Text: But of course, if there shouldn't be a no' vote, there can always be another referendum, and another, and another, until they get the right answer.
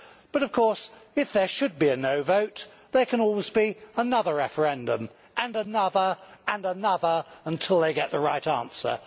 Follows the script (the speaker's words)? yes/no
no